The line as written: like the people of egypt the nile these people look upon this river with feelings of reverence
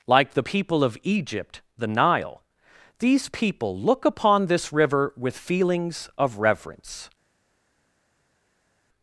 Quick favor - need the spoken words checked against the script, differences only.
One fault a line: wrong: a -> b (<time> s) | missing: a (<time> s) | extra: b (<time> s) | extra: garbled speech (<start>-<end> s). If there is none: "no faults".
no faults